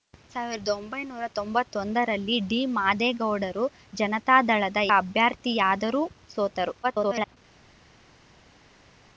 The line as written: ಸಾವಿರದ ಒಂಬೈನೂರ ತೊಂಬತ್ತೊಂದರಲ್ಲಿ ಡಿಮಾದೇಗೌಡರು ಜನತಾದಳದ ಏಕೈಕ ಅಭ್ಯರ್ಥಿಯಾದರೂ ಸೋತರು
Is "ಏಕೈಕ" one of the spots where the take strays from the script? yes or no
yes